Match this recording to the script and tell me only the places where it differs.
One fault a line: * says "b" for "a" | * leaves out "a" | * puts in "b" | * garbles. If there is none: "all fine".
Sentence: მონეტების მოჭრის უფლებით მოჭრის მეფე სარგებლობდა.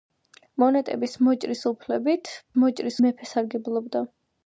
all fine